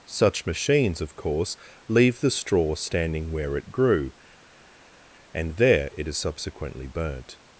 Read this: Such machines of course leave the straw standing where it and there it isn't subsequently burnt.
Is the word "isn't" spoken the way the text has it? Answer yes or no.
no